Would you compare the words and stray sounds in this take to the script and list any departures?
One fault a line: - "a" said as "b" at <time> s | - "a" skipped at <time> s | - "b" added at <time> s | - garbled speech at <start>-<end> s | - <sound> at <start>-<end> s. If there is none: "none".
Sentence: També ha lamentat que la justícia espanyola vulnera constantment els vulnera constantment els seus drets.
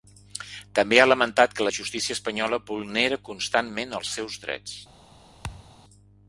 - "vulnera constantment els" skipped at 4.1 s
- thud at 5.4-5.7 s